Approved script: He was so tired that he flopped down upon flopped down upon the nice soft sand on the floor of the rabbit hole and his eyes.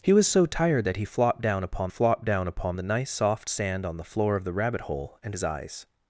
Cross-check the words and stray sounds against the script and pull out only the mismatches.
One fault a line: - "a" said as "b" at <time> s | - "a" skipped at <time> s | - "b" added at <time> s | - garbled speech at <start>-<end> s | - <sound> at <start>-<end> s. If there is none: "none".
none